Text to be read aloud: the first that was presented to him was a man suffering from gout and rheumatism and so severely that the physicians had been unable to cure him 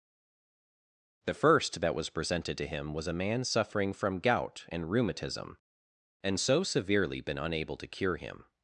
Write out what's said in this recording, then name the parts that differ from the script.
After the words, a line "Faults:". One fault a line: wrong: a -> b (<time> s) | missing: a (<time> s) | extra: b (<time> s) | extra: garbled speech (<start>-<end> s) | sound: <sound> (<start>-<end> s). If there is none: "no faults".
the first that was presented to him was a man suffering from gout and rheumatism and so severely been unable to cure him
Faults:
missing: that the physicians had (7.2 s)